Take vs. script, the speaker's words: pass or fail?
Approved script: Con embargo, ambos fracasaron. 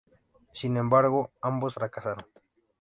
fail